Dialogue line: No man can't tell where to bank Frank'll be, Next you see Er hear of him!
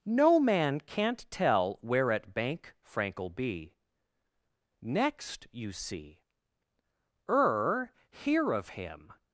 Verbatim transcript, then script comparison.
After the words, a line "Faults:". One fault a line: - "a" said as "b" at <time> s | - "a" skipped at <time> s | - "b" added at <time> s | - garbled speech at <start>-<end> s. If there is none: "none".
No man can't tell where at bank Frank'll be, Next you see Er hear of him!
Faults:
- "to" said as "at" at 2.1 s